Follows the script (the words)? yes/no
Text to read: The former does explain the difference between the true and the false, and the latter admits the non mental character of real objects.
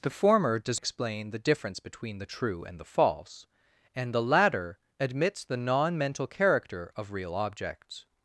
yes